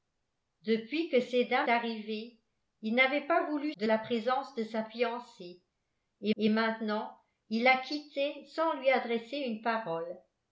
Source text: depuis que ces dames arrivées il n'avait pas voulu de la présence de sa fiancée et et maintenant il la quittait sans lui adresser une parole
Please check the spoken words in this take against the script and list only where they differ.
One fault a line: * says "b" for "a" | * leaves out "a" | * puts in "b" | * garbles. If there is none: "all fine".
all fine